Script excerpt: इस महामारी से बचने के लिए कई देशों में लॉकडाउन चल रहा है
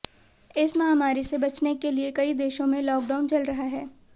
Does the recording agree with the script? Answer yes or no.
yes